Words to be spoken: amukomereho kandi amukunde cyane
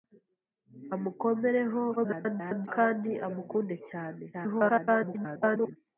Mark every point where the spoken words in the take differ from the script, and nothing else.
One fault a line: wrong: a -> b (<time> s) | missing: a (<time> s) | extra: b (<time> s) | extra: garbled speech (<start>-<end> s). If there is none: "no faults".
extra: garbled speech (2.0-2.7 s)
extra: garbled speech (4.3-5.8 s)